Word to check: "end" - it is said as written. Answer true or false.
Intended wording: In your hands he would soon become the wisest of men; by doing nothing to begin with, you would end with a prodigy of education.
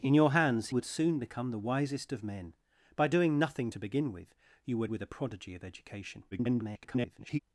false